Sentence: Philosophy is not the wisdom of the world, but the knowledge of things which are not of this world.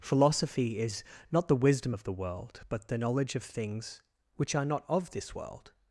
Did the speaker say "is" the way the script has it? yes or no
yes